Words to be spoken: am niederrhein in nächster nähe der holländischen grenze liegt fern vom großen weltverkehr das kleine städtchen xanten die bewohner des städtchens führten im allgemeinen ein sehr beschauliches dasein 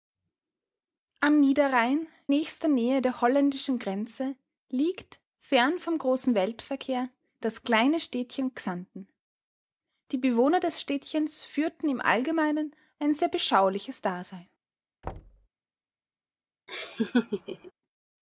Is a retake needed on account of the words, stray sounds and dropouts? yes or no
yes